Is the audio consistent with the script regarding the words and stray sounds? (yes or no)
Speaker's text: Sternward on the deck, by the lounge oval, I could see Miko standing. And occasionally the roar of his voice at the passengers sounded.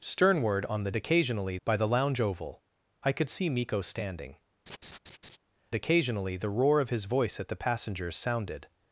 no